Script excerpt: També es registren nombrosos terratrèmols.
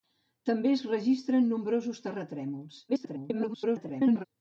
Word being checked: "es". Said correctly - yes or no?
yes